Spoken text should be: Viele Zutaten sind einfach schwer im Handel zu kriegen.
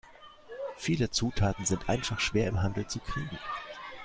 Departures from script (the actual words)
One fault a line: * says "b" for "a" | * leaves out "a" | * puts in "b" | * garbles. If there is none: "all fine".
all fine